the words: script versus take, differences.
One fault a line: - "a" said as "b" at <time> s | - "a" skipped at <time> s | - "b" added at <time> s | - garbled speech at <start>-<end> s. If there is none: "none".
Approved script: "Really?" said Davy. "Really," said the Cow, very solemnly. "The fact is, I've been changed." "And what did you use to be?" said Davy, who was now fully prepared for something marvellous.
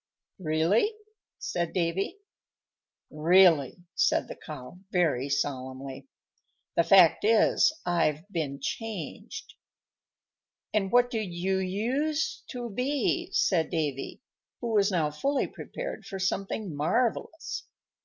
none